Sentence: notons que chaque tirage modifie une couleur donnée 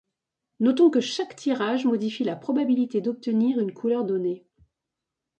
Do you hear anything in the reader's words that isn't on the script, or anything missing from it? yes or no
yes